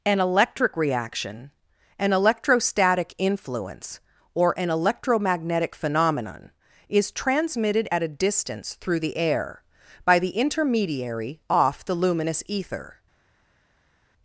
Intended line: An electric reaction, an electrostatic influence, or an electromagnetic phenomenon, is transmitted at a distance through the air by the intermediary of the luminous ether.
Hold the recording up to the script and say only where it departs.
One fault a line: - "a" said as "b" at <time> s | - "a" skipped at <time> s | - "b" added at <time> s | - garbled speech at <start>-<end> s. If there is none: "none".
- "of" said as "off" at 11.5 s